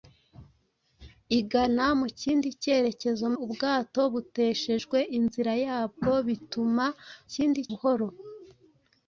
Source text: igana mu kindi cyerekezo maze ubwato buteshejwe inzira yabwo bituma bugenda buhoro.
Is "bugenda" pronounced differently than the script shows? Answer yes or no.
yes